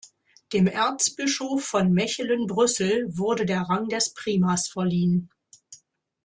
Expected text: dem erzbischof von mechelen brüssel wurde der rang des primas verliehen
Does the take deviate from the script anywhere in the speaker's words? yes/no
no